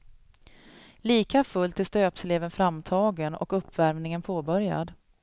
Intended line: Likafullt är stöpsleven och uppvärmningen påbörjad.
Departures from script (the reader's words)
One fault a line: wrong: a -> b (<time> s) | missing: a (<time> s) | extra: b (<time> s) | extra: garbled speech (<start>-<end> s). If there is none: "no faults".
extra: framtagen (2.5 s)